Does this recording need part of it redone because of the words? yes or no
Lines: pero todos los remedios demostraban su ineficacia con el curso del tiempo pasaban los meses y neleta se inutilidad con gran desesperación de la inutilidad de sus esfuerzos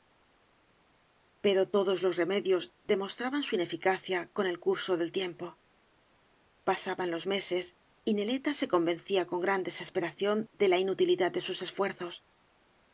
yes